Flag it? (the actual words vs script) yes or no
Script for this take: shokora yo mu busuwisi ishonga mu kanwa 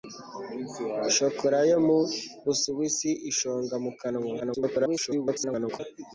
yes